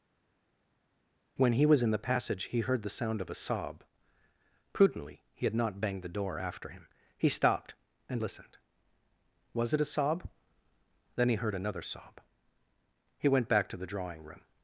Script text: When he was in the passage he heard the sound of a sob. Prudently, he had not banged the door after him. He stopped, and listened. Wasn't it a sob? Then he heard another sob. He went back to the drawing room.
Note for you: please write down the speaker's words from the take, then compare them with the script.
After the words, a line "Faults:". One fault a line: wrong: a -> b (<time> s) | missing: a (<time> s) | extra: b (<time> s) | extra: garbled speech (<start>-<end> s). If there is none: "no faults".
When he was in the passage he heard the sound of a sob. Prudently, he had not banged the door after him. He stopped, and listened. Was it a sob? Then he heard another sob. He went back to the drawing room.
Faults:
wrong: Wasn't -> Was (9.5 s)